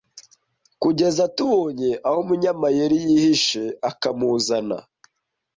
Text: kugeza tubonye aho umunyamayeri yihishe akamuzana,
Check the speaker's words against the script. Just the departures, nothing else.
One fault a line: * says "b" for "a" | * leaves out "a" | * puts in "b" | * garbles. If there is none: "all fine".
all fine